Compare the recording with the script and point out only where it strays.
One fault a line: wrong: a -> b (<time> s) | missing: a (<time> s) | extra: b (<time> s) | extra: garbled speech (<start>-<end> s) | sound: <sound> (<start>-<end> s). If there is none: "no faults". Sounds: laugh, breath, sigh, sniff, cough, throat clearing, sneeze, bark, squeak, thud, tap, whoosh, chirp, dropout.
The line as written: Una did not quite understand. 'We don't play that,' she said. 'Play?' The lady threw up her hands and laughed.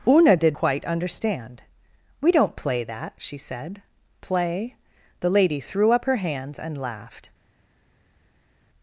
missing: not (0.6 s)